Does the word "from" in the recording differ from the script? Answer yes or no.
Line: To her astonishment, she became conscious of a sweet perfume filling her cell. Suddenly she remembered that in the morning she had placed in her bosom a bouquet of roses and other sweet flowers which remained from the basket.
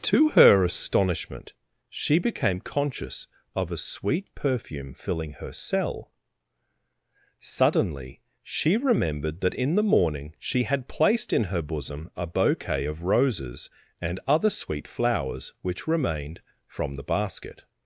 no